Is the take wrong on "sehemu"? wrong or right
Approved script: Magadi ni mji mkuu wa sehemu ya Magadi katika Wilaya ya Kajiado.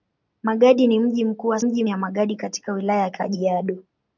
wrong